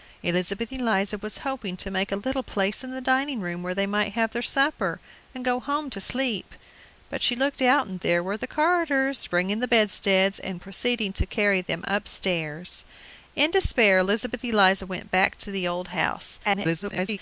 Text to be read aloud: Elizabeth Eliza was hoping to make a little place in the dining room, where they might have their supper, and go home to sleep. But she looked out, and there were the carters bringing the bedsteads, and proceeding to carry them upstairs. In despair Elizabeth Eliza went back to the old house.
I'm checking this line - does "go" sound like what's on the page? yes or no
yes